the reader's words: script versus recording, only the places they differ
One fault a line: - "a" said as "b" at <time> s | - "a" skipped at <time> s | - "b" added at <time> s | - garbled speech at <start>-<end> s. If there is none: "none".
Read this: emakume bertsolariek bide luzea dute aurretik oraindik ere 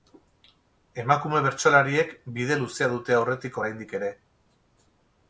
none